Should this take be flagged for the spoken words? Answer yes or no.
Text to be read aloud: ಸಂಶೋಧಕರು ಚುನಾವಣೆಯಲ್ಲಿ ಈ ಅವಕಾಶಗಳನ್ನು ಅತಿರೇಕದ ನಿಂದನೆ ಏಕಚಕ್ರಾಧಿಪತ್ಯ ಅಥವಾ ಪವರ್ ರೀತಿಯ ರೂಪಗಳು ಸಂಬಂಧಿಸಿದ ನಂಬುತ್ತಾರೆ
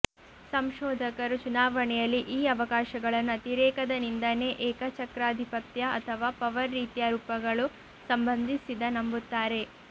no